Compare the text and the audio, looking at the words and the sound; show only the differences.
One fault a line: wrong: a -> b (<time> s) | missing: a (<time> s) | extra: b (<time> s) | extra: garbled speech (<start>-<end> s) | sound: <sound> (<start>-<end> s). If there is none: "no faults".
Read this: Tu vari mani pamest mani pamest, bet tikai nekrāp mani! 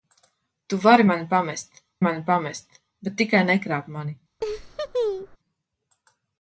sound: laugh (4.4-5.4 s)